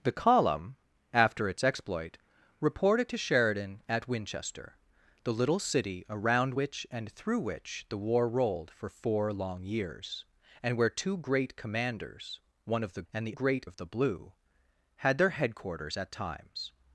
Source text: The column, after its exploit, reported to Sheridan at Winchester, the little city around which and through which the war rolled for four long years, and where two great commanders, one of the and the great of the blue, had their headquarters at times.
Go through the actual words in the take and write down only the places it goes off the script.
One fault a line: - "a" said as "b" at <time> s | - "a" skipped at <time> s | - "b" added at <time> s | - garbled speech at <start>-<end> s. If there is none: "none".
none